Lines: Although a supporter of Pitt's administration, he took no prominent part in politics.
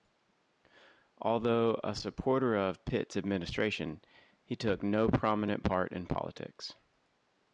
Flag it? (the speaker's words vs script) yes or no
no